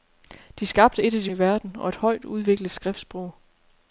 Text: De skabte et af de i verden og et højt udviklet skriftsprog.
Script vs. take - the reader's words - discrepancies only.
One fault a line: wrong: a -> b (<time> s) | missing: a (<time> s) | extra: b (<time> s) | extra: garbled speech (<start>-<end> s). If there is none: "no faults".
no faults